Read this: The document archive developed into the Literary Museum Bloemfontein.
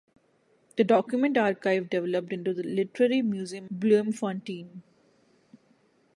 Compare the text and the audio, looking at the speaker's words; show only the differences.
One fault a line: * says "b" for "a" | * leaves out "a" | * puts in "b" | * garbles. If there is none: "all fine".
all fine